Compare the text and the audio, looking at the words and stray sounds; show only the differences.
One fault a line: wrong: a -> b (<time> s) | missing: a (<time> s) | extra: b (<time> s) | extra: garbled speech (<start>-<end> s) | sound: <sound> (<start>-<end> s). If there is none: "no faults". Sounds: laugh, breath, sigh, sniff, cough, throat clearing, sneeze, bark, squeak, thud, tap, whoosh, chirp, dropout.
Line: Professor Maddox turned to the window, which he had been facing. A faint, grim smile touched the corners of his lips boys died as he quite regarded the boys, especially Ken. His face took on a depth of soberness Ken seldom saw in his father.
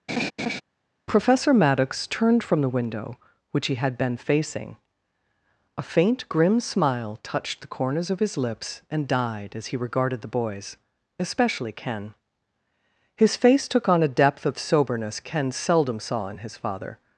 sound: laugh (0.1-0.6 s)
wrong: to -> from (2.4 s)
wrong: boys -> and (8.9 s)
missing: quite (9.8 s)